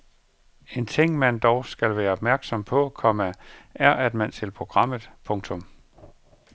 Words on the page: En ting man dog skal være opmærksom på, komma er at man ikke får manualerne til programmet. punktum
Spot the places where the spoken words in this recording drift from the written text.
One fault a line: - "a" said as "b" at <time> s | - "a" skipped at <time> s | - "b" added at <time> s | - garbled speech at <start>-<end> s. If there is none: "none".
- "ikke får manualerne" skipped at 4.3 s